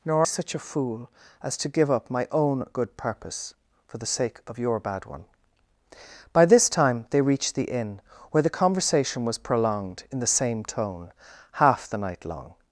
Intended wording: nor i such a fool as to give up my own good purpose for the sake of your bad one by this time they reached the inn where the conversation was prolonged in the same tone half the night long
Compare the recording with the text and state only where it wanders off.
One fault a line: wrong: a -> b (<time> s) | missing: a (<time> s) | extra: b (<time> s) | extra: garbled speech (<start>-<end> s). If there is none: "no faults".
missing: i (0.3 s)